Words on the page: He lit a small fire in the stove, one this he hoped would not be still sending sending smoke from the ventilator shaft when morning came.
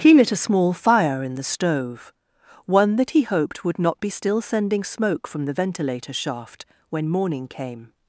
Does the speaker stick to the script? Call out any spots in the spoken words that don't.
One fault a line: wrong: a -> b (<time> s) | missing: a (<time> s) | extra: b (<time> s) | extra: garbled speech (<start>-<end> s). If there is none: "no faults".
wrong: this -> that (3.0 s)
missing: sending (4.8 s)